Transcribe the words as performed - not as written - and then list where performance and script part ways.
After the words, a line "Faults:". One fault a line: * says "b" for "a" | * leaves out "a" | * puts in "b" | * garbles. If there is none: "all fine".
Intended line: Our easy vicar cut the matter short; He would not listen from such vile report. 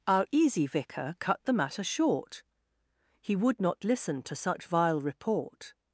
Our easy vicar cut the matter short; He would not listen to such vile report.
Faults:
* says "to" for "from"